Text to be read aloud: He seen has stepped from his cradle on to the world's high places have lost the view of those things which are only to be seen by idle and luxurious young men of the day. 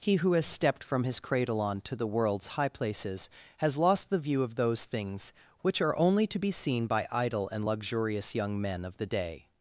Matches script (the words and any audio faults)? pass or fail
fail